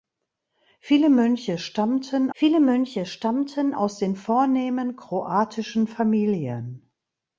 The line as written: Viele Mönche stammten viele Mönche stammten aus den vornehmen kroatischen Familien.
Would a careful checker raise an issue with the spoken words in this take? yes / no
no